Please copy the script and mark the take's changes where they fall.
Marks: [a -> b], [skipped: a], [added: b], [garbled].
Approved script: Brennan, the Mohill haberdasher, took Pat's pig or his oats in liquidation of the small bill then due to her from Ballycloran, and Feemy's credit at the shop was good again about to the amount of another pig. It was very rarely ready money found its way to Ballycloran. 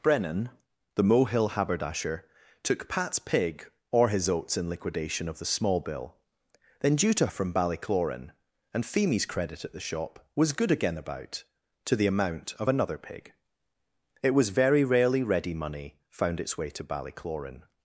Brennan, the Mohill haberdasher, took Pat's pig or his oats in liquidation of the small bill then due to [skipped: her] from Ballycloran, and Feemy's credit at the shop was good again about to the amount of another pig. It was very rarely ready money found its way to Ballycloran.